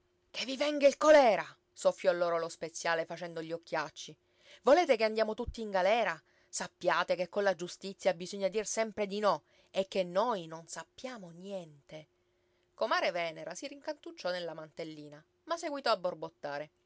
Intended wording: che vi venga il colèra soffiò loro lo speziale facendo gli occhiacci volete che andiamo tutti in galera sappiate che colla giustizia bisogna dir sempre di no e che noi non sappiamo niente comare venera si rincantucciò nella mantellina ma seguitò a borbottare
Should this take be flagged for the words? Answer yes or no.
no